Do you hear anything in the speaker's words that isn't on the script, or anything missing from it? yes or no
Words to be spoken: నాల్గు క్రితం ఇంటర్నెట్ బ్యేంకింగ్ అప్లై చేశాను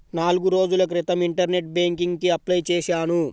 yes